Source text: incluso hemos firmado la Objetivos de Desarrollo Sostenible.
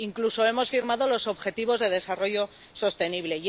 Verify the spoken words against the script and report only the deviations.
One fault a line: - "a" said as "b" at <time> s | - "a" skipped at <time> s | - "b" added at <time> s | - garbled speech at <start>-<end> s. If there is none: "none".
- "la" said as "los" at 1.1 s